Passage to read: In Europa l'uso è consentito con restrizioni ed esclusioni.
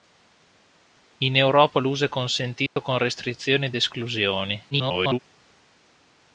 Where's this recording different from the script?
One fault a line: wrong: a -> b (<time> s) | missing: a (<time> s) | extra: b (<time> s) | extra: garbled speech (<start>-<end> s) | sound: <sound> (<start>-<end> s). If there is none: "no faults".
sound: dropout (2.7-2.8 s)
extra: garbled speech (4.7-5.2 s)